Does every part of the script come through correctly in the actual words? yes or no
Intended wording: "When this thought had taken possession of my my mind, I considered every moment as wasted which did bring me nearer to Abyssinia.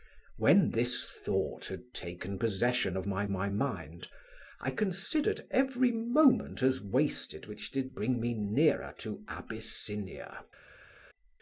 yes